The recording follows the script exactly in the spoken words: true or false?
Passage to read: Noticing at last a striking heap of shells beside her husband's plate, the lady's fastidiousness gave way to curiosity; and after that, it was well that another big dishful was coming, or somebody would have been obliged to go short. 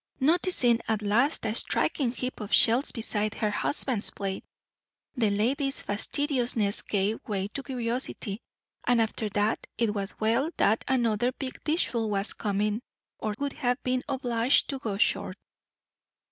false